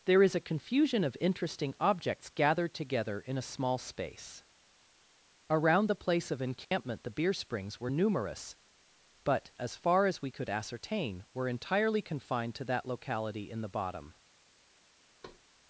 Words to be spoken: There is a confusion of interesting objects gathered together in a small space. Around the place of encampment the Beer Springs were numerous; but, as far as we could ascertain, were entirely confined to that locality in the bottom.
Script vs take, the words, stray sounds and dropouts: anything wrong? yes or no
yes